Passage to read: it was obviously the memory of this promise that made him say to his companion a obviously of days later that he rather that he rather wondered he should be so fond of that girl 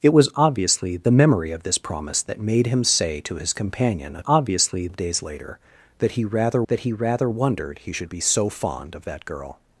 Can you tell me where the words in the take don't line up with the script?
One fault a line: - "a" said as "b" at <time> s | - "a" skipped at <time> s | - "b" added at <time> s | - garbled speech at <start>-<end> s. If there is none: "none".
none